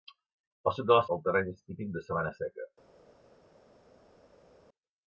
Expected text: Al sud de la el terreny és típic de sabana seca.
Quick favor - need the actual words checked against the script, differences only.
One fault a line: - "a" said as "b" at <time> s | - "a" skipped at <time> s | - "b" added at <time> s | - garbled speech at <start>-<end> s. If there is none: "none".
none